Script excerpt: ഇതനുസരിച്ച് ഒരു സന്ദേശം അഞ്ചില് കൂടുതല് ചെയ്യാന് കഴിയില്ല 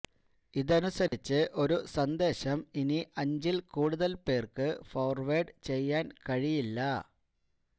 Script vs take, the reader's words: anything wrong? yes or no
yes